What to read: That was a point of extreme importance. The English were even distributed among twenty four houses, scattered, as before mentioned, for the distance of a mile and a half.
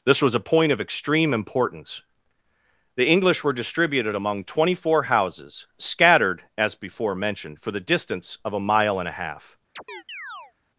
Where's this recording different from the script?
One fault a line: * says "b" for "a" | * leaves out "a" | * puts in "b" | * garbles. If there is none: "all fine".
* says "This" for "That"
* leaves out "even"